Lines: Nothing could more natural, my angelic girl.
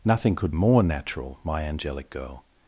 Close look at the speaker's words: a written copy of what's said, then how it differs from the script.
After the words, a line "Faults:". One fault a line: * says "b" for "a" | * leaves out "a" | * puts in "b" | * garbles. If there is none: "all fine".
Nothing could more natural, my angelic girl.
Faults:
all fine